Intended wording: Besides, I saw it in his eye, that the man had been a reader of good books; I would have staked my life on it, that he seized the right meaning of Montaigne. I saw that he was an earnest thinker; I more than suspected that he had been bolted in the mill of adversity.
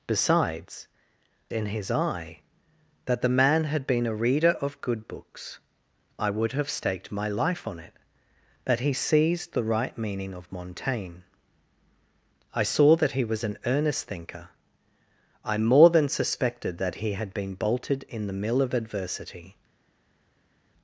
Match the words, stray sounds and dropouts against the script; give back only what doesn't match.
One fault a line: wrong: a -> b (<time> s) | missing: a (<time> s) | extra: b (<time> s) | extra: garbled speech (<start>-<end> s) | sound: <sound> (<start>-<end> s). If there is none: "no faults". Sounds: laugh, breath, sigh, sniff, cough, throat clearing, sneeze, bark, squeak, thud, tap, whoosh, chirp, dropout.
missing: I saw it (0.9 s)